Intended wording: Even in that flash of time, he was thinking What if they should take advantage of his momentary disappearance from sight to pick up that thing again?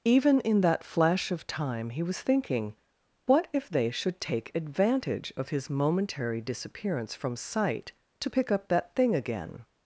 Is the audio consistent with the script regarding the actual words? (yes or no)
yes